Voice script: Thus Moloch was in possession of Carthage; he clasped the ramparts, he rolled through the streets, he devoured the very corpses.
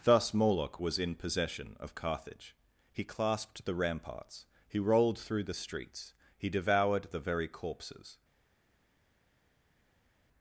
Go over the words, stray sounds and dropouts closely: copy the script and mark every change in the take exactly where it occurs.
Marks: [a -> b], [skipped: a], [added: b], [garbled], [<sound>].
Thus Moloch was in possession of Carthage; he clasped the ramparts, he rolled through the streets, he devoured the very corpses.